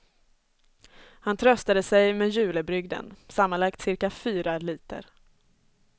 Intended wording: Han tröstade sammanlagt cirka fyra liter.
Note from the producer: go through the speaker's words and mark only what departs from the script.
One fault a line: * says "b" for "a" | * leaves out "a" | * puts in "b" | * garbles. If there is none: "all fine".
* puts in "sig med julebrygden"